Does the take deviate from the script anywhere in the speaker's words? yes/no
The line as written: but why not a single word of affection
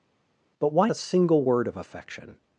yes